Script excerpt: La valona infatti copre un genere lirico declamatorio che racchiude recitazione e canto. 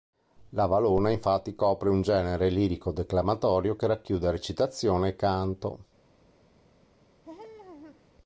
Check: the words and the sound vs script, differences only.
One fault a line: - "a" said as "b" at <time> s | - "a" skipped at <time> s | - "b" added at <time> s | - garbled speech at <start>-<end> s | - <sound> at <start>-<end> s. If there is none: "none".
- laugh at 7.2-8.1 s